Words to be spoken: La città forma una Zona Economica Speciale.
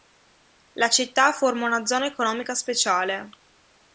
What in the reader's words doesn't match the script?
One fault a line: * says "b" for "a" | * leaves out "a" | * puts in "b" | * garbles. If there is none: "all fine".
all fine